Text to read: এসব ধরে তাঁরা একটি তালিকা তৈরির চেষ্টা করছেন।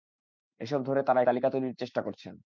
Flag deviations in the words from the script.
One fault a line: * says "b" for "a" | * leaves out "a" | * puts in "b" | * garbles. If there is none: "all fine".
* leaves out "একটি"